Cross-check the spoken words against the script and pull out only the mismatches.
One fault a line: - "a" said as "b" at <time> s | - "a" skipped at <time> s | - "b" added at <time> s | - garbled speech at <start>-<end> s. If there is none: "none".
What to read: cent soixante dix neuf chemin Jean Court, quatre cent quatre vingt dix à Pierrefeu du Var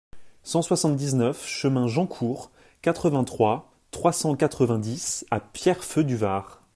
- "vingt trois trois" added at 3.1 s